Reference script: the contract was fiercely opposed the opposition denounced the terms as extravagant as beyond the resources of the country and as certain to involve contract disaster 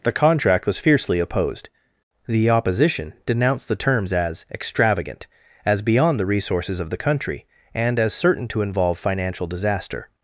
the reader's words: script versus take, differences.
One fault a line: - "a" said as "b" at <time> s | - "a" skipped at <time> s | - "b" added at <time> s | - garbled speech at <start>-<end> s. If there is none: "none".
- "contract" said as "financial" at 9.0 s